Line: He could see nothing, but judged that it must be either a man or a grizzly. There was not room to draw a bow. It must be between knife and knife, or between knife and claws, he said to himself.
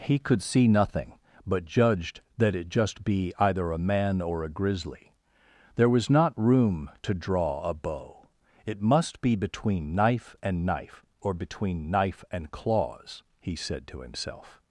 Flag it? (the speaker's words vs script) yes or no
yes